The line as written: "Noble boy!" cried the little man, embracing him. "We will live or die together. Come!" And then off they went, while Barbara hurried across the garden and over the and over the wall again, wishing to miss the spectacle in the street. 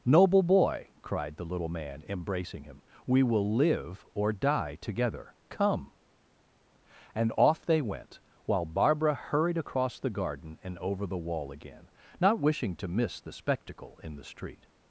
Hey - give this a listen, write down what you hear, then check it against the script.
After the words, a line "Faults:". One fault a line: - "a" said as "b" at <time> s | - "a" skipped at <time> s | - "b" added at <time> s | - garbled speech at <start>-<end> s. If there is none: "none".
"Noble boy!" cried the little man, embracing him. "We will live or die together. Come!" And off they went, while Barbara hurried across the garden and over the wall again, not wishing to miss the spectacle in the street.
Faults:
- "then" skipped at 7.3 s
- "and over the" skipped at 11.2 s
- "not" added at 12.2 s